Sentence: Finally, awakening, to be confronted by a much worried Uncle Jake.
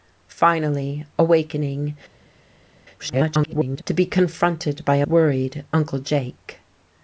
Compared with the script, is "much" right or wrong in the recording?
wrong